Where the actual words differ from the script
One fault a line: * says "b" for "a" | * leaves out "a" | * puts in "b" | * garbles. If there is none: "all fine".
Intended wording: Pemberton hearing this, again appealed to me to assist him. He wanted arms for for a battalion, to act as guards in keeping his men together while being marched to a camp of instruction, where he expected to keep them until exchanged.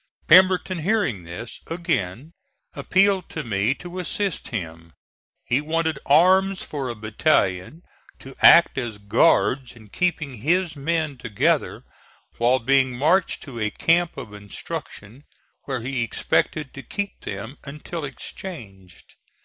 * leaves out "for"